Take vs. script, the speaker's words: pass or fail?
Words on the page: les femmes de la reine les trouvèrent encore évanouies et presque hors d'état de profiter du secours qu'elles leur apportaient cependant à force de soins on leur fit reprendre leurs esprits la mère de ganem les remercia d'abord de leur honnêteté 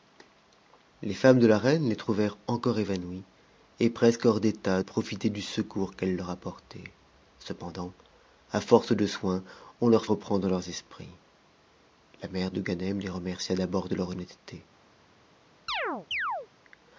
fail